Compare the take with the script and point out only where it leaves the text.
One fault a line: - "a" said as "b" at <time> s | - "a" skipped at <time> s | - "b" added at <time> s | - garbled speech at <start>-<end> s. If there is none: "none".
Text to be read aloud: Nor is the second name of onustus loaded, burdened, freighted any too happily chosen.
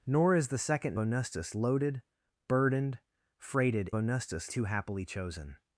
- "name of" skipped at 1.0 s
- "any" said as "onustus" at 4.0 s